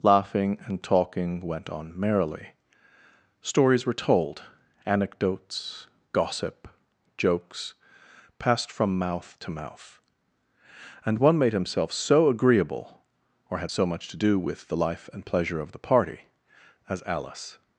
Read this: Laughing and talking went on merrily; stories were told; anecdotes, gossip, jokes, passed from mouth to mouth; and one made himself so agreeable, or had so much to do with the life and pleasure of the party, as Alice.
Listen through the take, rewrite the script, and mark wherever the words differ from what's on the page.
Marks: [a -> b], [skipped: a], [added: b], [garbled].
Laughing and talking went on merrily; stories were told; anecdotes, gossip, jokes, passed from mouth to mouth; and one made himself so agreeable, or had so much to do with the life and pleasure of the party, as Alice.